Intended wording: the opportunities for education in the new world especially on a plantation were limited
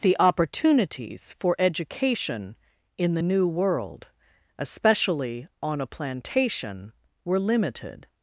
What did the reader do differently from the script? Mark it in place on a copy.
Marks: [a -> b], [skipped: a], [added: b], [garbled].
the opportunities for education in the new world especially on a plantation were limited